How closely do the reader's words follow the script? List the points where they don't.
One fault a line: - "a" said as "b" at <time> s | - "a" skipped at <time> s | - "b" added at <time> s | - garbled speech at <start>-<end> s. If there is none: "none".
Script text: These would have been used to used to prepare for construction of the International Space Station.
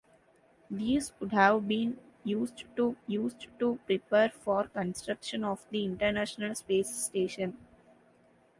none